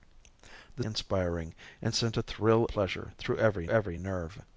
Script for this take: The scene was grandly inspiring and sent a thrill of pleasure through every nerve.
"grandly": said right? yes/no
no